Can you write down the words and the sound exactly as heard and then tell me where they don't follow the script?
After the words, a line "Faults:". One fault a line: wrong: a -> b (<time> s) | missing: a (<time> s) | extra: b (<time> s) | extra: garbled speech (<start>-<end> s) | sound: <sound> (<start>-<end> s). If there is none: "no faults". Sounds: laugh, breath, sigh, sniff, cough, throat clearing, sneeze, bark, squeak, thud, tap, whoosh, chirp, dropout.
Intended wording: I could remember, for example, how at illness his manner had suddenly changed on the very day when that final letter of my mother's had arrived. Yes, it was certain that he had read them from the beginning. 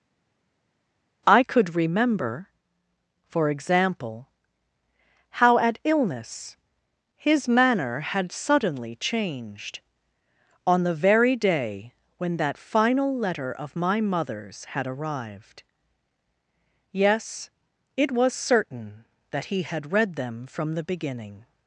I could remember, for example, how at illness his manner had suddenly changed on the very day when that final letter of my mother's had arrived. Yes, it was certain that he had read them from the beginning.
Faults:
no faults